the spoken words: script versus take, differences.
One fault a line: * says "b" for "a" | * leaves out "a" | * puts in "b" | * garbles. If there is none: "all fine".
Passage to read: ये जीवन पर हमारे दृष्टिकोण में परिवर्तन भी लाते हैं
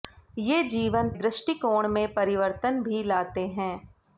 * leaves out "पर हमारे"